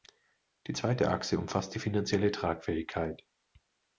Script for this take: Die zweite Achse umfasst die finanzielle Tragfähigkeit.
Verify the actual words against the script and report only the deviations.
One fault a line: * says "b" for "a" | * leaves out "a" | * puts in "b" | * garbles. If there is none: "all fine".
all fine